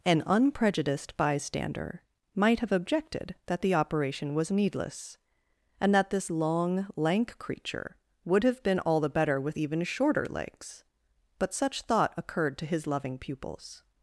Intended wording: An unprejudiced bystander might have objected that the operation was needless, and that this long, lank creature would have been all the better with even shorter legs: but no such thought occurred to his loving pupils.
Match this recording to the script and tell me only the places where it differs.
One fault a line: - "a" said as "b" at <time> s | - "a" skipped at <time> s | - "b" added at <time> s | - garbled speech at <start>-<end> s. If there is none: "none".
- "no" skipped at 11.5 s